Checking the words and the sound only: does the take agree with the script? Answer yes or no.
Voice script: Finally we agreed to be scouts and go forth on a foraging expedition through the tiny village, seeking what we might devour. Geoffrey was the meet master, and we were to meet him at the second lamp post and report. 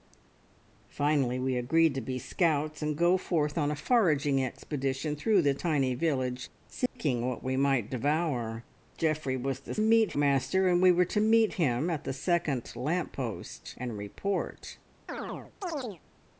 no